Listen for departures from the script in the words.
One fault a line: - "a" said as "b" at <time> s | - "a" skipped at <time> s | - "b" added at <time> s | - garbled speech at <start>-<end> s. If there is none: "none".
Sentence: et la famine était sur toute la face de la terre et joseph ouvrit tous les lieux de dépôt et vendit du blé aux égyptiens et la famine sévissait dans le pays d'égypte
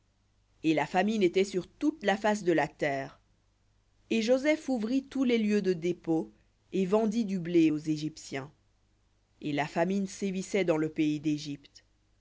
none